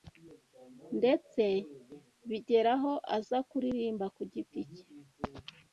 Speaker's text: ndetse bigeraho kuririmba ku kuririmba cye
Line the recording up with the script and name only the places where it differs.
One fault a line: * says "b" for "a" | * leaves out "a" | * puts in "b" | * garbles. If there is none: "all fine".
* puts in "aza"
* says "giti" for "kuririmba"